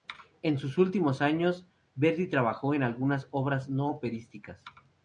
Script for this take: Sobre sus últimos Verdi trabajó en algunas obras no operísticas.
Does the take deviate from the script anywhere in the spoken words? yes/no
yes